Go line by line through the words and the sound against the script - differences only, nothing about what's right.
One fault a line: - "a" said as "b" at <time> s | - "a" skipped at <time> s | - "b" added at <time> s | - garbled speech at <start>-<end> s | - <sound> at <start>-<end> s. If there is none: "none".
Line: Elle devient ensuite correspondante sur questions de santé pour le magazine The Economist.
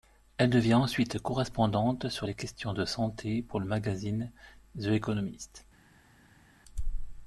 - "les" added at 2.2 s